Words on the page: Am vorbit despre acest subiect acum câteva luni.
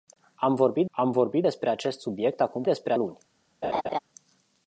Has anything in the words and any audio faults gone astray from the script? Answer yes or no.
yes